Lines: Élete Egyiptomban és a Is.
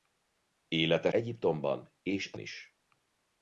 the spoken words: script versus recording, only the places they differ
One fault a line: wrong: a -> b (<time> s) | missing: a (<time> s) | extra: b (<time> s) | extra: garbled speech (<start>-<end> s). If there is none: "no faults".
no faults